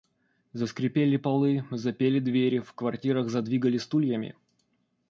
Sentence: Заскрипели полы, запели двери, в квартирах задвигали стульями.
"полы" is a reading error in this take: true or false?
false